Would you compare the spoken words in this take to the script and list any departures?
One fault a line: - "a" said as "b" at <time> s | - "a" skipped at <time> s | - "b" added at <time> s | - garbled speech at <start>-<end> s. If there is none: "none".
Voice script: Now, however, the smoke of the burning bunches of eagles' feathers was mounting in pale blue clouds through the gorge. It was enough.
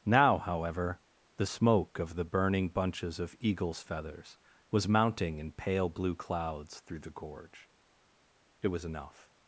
none